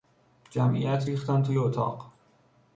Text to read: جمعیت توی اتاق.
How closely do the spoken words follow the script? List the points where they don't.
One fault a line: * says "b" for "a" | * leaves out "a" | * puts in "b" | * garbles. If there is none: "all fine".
* puts in "ریختند"